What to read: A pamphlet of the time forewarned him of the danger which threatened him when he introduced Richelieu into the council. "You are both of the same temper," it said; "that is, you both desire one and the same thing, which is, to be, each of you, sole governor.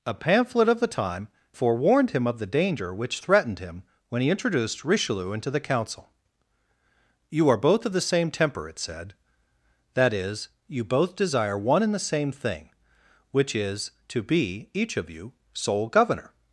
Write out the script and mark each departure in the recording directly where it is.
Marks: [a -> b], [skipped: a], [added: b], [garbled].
A pamphlet of the time forewarned him of the danger which threatened him when he introduced Richelieu into the council. "You are both of the same temper," it said; "that is, you both desire one and the same thing, which is, to be, each of you, sole governor.